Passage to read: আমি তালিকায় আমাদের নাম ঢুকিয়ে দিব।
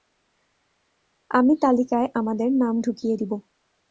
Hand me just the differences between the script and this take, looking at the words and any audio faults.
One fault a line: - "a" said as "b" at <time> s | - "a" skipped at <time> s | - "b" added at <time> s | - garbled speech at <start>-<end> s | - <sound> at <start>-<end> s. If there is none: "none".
none